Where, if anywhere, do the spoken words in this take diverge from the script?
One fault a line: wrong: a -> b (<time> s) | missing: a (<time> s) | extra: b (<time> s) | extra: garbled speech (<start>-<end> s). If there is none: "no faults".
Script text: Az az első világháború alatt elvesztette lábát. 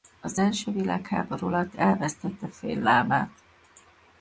missing: az (0.4 s)
extra: fél (2.5 s)